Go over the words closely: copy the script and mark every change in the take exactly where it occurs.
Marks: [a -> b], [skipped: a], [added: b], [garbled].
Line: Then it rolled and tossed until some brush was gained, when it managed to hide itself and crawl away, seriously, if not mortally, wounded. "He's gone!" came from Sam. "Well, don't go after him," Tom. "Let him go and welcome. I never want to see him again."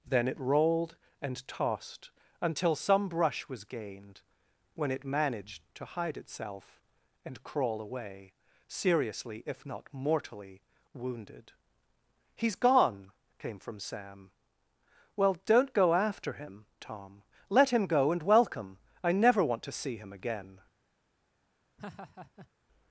Then it rolled and tossed until some brush was gained, when it managed to hide itself and crawl away, seriously, if not mortally, wounded. "He's gone!" came from Sam. "Well, don't go after him," Tom. "Let him go and welcome. I never want to see him again."